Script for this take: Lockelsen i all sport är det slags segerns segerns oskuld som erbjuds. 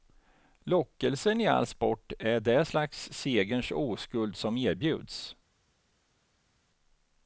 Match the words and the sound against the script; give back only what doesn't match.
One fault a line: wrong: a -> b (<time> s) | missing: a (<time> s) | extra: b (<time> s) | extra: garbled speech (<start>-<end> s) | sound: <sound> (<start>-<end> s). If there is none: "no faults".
missing: segerns (3.7 s)